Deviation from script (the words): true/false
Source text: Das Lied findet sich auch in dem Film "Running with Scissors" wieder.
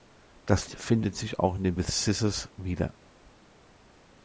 true